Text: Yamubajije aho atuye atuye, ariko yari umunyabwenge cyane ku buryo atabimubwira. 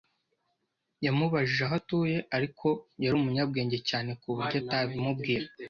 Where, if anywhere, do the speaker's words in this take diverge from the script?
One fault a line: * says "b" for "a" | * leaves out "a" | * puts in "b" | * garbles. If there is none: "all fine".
* leaves out "atuye"